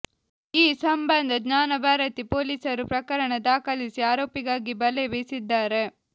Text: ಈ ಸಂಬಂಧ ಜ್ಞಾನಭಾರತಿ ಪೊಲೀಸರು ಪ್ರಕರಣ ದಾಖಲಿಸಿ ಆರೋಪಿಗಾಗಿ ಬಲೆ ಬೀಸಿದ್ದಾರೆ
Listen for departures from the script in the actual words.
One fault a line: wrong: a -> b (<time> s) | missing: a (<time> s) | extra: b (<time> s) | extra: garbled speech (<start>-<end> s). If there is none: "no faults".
no faults